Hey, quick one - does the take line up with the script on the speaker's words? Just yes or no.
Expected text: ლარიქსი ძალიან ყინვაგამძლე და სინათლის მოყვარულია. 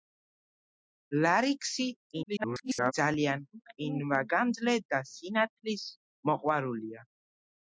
no